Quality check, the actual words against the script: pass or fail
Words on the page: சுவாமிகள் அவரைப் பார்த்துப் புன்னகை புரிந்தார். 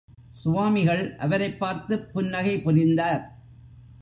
pass